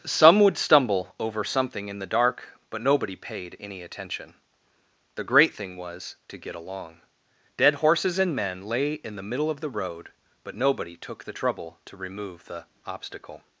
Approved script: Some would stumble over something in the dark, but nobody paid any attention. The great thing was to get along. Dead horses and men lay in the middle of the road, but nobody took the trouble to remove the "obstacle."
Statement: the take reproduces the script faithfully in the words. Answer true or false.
true